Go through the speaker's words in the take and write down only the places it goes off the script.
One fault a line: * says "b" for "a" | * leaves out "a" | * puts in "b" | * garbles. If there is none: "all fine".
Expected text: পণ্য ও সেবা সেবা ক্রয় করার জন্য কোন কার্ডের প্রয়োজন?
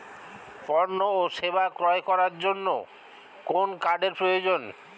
* leaves out "সেবা"